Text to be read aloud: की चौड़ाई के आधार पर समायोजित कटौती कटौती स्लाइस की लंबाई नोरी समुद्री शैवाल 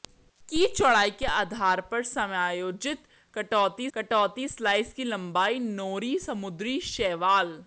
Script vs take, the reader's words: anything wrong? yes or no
no